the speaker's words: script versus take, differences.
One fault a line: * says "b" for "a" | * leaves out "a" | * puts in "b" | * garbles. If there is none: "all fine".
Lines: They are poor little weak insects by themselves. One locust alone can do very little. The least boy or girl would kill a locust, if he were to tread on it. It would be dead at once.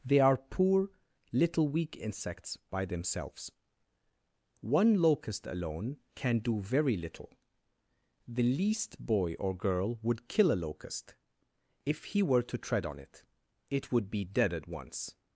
all fine